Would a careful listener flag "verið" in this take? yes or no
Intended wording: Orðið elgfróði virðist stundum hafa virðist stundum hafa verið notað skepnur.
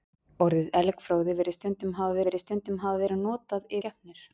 no